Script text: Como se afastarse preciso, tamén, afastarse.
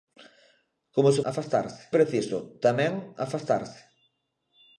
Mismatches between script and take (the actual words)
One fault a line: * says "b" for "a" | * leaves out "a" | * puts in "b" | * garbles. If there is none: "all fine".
all fine